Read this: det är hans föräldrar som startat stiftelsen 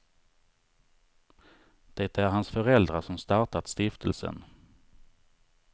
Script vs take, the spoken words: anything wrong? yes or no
no